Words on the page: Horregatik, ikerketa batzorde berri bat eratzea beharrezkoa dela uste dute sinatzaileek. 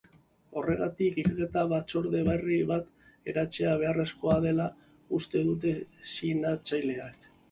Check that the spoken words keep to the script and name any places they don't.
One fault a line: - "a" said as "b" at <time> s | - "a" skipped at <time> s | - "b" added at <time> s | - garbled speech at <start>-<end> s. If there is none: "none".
none